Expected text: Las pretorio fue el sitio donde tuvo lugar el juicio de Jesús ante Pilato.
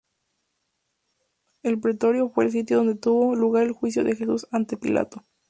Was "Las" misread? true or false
true